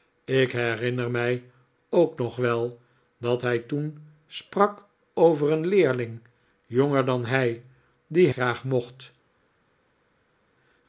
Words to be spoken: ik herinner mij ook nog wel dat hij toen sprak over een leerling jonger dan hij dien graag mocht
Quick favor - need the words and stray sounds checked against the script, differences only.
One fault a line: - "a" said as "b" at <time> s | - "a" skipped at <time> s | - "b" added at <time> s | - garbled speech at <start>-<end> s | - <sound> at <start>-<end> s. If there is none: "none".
none